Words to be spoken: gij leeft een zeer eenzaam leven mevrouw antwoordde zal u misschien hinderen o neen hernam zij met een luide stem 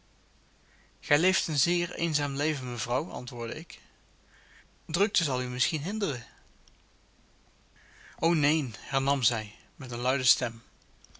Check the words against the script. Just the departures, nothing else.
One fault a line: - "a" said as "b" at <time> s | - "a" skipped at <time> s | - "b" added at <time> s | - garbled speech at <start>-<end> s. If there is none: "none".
- "ik drukte" added at 3.6 s